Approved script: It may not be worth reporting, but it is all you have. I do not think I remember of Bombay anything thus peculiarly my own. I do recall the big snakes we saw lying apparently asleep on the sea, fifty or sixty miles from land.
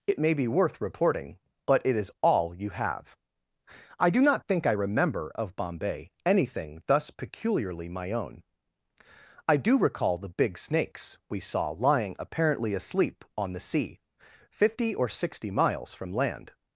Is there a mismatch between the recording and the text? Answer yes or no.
yes